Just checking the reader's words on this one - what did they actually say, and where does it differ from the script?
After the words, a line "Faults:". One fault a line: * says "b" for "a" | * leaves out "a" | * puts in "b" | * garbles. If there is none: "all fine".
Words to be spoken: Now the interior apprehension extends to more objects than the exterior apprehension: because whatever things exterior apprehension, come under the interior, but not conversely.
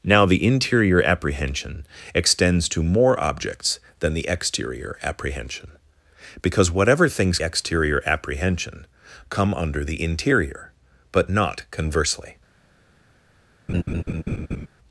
Now the interior apprehension extends to more objects than the exterior apprehension: because whatever things exterior apprehension, come under the interior, but not conversely.
Faults:
all fine